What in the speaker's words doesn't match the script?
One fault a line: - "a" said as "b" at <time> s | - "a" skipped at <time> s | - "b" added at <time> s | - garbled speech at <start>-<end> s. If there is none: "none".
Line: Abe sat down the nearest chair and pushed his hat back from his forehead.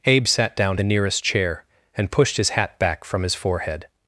none